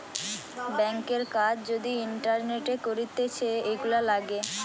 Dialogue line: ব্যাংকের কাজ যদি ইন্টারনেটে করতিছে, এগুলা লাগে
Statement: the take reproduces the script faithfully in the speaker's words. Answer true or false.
true